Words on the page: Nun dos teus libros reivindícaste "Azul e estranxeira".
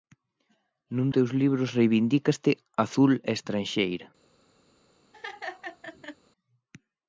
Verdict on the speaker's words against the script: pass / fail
fail